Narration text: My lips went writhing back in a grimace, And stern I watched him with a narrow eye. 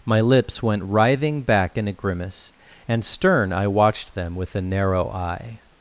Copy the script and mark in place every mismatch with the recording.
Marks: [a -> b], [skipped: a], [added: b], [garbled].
My lips went writhing back in a grimace, And stern I watched [him -> them] with a narrow eye.